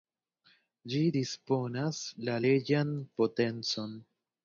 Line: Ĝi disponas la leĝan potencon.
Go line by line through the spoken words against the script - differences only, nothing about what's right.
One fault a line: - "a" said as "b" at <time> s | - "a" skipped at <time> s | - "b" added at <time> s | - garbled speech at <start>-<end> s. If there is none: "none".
none